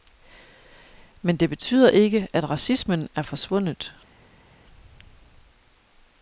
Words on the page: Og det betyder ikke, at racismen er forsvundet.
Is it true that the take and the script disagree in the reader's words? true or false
true